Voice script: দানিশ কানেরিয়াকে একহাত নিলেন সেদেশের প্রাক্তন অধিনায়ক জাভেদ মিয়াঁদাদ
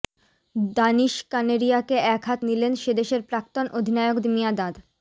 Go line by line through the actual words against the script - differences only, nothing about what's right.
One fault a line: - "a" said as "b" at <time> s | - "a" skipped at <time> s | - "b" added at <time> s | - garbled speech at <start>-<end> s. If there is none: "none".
- "জাভেদ" skipped at 4.2 s